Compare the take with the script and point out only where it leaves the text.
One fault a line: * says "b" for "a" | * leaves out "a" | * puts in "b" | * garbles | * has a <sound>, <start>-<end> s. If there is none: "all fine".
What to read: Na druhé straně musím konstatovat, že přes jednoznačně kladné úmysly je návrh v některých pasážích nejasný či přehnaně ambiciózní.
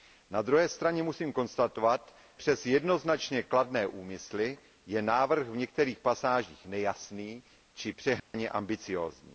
* leaves out "že"
* has a dropout, 8.2-8.3 s